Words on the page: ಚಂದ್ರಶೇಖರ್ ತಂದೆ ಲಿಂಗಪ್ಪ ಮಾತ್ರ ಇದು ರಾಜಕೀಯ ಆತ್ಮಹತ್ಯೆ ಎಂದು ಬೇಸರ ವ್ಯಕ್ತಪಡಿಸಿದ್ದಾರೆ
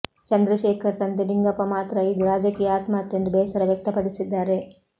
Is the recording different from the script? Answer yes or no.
no